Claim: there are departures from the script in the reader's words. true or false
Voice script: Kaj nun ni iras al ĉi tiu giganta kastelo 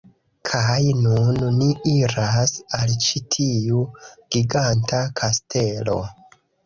false